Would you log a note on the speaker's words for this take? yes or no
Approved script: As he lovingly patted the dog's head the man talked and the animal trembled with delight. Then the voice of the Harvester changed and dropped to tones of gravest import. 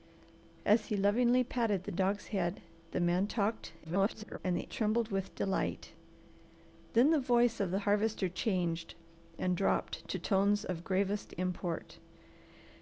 yes